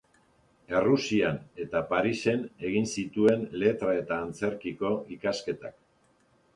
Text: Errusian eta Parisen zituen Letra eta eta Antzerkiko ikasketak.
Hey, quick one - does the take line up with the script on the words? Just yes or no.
no